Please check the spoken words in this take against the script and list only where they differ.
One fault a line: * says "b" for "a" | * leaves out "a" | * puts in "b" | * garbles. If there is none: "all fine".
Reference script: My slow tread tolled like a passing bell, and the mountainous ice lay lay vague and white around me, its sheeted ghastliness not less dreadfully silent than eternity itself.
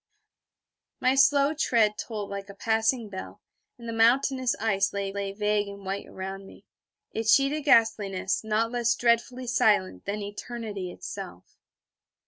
all fine